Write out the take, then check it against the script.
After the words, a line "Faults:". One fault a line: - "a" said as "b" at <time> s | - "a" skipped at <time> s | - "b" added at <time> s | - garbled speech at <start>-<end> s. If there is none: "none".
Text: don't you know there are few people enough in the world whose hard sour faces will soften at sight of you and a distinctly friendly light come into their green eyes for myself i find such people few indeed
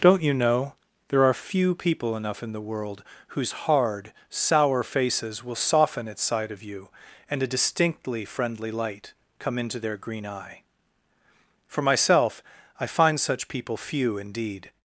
don't you know there are few people enough in the world whose hard sour faces will soften at sight of you and a distinctly friendly light come into their green eye for myself i find such people few indeed
Faults:
- "eyes" said as "eye" at 10.2 s